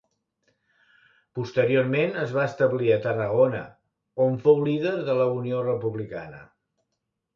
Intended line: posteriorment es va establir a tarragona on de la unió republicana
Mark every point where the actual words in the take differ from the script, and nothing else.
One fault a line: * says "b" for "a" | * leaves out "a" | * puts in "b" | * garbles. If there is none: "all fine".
* puts in "fou líder"